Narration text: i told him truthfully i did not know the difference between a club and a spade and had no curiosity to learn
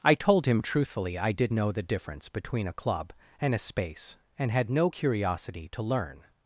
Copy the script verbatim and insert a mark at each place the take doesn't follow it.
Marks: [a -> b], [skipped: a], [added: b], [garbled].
i told him truthfully i did [skipped: not] know the difference between a club and a [spade -> space] and had no curiosity to learn